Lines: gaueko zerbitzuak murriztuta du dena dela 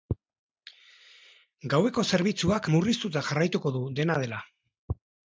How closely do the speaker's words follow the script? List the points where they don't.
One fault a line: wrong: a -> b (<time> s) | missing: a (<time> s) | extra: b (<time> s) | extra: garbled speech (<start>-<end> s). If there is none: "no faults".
extra: jarraituko (3.3 s)